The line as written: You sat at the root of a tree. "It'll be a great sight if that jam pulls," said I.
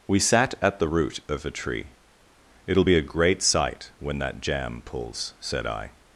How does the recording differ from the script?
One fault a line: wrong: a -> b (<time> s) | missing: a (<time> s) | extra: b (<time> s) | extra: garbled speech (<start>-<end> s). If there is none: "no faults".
wrong: You -> We (0.1 s)
wrong: if -> when (4.0 s)